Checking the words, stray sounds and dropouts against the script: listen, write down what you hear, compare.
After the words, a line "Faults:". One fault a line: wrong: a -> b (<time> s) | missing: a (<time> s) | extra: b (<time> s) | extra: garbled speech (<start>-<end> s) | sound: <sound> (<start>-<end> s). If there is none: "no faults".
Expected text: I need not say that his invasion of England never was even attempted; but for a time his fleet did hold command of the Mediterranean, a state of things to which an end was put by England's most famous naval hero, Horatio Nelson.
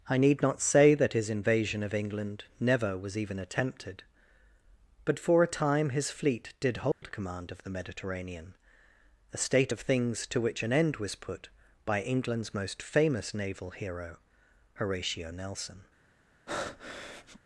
I need not say that his invasion of England never was even attempted; but for a time his fleet did hold command of the Mediterranean, a state of things to which an end was put by England's most famous naval hero, Horatio Nelson.
Faults:
sound: dropout (6.9-7.0 s)
sound: breath (16.5-17.4 s)